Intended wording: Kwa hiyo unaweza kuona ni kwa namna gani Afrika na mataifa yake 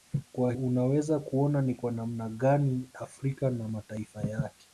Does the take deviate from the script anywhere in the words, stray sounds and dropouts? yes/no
yes